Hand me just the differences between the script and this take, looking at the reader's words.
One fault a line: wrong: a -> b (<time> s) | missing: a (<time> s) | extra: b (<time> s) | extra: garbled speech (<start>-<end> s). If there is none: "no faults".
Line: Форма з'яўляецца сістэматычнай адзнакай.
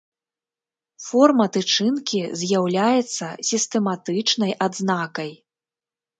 extra: тычынкі (1.6 s)